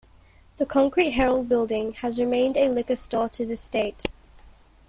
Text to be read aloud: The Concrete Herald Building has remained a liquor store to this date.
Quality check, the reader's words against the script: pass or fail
pass